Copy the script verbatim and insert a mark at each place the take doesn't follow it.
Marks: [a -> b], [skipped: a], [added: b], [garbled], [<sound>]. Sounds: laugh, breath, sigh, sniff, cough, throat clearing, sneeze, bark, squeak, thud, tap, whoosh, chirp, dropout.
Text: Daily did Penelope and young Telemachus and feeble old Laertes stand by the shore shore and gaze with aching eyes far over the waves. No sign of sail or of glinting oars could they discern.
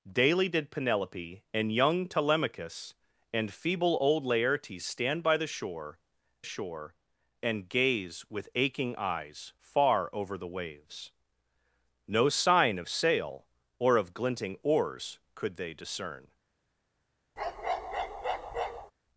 Daily did Penelope and young Telemachus and feeble old Laertes stand by the shore shore and gaze with aching eyes far over the waves. No sign of sail or of glinting oars could they discern. [bark]